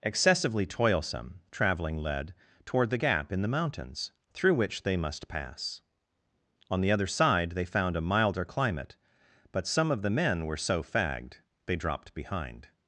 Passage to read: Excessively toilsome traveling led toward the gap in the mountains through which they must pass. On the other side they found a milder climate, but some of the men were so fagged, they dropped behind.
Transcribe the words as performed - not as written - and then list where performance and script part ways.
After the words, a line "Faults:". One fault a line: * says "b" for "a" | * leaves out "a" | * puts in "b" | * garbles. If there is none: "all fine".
Excessively toilsome traveling led toward the gap in the mountains through which they must pass. On the other side they found a milder climate, but some of the men were so fagged, they dropped behind.
Faults:
all fine